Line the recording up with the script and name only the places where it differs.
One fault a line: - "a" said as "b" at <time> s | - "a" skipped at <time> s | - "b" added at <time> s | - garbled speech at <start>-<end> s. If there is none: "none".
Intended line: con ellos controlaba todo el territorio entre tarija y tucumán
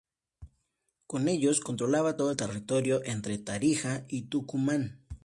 none